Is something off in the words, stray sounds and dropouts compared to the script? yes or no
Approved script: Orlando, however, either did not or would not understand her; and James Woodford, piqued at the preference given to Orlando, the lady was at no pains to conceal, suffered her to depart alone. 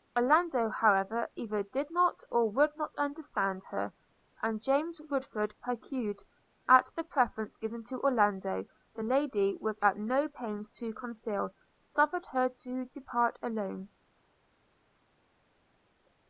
no